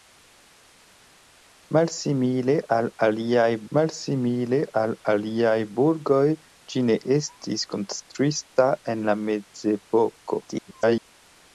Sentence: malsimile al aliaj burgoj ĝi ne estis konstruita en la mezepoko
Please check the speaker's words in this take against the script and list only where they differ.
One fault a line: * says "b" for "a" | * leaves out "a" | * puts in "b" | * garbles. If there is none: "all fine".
* puts in "malsimile al aliaj"
* garbles